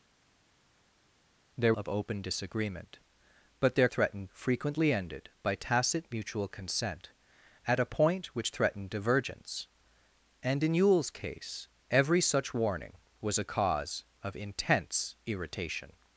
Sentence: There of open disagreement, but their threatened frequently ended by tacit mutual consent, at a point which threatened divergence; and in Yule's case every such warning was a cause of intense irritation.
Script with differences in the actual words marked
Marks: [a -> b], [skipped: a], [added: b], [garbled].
There of open disagreement, but their threatened frequently ended by tacit mutual consent, at a point which threatened divergence; and in Yule's case every such warning was a cause of intense irritation.